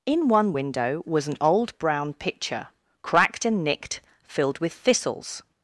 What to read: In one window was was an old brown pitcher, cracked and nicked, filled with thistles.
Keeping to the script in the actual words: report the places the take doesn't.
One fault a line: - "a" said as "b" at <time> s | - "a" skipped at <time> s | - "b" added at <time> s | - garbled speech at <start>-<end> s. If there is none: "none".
- "was" skipped at 1.3 s